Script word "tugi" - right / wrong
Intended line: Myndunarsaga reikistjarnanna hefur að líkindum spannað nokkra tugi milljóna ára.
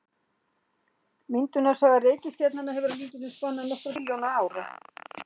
wrong